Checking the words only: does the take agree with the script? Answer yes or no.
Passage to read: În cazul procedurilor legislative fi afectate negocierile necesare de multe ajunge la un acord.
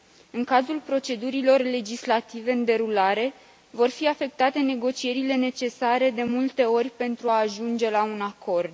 no